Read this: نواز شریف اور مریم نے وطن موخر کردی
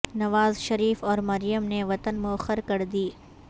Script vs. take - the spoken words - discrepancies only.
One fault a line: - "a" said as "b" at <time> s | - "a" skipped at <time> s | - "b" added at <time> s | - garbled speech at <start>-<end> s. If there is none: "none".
none